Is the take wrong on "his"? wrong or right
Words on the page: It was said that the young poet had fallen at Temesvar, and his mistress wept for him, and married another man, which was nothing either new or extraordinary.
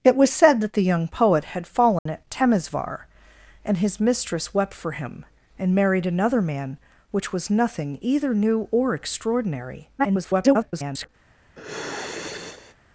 right